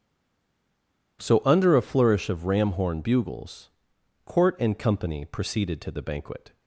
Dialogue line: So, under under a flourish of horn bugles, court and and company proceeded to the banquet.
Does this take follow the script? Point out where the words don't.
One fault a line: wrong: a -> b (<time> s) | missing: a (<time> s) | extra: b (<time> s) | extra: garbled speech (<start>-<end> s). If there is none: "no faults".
missing: under (1.8 s)
extra: ram (2.5 s)
missing: and (4.8 s)